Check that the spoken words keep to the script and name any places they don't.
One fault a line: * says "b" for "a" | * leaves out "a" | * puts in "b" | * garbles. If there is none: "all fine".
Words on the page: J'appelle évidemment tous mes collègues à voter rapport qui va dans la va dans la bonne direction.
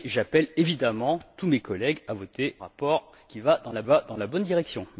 all fine